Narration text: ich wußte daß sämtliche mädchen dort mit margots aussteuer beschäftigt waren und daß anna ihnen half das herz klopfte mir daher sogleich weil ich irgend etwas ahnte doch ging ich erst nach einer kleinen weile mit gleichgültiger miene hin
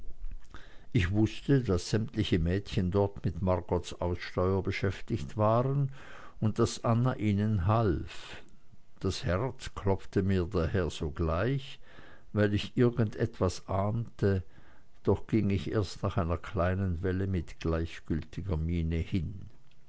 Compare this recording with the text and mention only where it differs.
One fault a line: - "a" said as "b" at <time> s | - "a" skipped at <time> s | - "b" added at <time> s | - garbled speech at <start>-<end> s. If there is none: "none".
none